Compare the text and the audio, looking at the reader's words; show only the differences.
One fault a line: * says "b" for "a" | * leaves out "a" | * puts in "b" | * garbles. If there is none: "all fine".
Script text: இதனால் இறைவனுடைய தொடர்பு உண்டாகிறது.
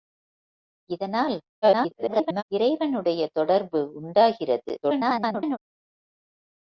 * garbles
* garbles